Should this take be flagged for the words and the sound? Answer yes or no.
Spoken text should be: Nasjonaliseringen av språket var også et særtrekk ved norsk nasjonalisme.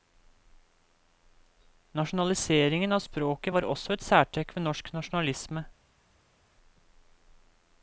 no